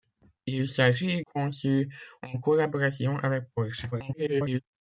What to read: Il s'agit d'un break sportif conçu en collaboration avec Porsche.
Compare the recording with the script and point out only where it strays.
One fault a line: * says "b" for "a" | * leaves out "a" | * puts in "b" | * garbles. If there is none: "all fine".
* leaves out "d'un break sportif"
* garbles